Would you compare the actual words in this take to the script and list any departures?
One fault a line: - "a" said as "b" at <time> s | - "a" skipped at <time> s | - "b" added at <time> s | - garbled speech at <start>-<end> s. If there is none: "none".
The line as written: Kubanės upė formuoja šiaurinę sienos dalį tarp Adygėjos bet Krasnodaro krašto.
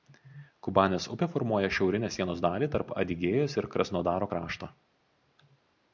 - "bet" said as "ir" at 3.6 s